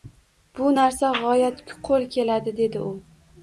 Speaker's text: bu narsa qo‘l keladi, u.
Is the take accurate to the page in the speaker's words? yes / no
no